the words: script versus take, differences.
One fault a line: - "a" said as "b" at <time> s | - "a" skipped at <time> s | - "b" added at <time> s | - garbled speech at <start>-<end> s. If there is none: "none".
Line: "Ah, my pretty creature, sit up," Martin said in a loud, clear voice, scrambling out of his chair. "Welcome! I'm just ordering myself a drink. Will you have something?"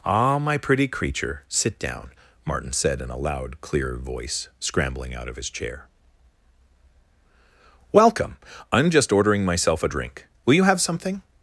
- "up" said as "down" at 1.8 s